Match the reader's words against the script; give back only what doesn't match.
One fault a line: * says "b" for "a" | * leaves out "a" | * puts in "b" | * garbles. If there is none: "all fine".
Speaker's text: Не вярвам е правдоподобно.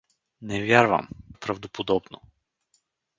all fine